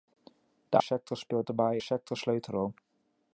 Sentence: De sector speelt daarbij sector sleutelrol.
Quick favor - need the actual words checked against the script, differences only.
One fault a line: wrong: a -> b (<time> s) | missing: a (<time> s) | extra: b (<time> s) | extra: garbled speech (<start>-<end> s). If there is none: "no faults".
no faults